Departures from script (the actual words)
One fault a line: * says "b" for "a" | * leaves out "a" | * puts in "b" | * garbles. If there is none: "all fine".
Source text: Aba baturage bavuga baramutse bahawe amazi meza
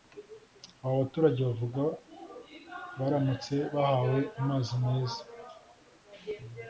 all fine